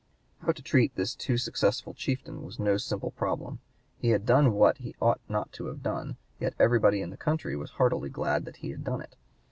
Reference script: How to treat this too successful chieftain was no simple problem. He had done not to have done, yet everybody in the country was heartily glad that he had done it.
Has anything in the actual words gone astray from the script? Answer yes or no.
yes